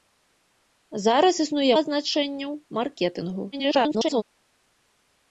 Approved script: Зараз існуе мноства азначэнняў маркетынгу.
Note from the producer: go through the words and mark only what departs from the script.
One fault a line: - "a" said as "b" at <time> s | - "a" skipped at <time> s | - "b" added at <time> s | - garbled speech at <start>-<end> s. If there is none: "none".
- "мноства" skipped at 1.7 s
- garbled speech at 3.5-4.2 s